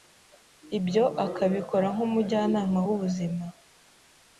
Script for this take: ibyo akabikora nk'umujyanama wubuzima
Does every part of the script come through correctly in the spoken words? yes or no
yes